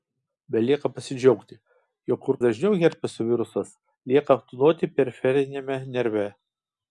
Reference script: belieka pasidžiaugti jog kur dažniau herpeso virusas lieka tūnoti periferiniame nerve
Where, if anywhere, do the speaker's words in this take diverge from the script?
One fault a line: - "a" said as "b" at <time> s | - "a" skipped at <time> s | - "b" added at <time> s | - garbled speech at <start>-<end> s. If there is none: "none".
none